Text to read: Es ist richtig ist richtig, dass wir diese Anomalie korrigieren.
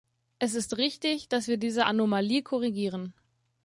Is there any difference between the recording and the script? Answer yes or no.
yes